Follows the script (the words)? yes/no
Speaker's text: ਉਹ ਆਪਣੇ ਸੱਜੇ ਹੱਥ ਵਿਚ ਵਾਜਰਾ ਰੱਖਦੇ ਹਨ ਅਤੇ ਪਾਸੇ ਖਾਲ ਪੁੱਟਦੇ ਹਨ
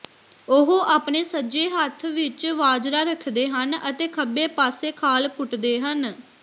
no